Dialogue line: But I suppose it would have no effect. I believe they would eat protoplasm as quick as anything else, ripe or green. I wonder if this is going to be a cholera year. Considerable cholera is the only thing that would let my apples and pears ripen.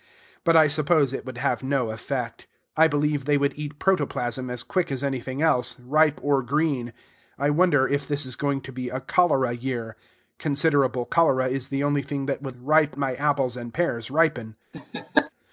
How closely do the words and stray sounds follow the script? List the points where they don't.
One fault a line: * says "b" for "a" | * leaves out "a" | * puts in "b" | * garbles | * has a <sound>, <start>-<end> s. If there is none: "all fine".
* says "ripe" for "let"
* has a laugh, 14.7-15.3 s